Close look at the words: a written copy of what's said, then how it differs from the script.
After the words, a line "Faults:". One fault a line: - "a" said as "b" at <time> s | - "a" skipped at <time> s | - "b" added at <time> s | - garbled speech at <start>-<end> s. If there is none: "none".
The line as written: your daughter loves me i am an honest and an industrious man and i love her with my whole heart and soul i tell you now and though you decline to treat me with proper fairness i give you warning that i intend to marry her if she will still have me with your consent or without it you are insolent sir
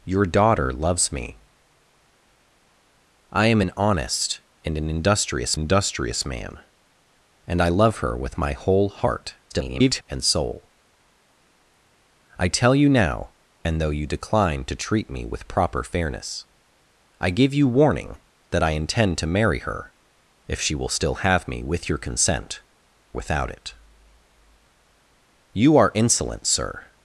your daughter loves me i am an honest and an industrious industrious man and i love her with my whole heart [garbled] and soul i tell you now and though you decline to treat me with proper fairness i give you warning that i intend to marry her if she will still have me with your consent without it you are insolent sir
Faults:
- "industrious" added at 5.5 s
- garbled speech at 9.5-10.0 s
- "or" skipped at 22.6 s